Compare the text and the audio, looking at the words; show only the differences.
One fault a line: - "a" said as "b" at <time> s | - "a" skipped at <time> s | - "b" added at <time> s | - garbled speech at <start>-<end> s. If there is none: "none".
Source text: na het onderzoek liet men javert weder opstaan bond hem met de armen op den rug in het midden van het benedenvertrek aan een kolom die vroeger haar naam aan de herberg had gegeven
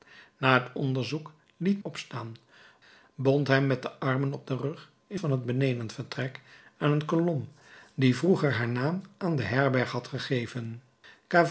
- "men javert weder" skipped at 1.8 s
- "het midden" skipped at 5.2 s